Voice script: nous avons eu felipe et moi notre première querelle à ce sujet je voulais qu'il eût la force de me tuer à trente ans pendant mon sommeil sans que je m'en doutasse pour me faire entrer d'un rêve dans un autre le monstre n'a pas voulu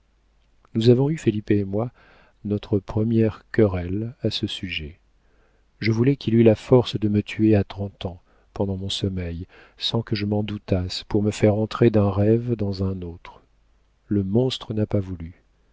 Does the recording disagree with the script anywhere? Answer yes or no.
no